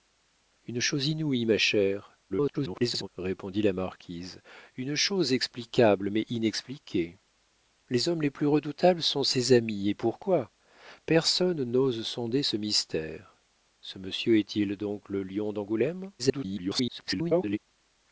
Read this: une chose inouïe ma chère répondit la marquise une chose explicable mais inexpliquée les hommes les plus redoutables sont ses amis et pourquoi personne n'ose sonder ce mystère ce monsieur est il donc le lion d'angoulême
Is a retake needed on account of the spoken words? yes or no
yes